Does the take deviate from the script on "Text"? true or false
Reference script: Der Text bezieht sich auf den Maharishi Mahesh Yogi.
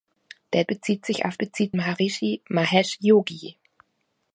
true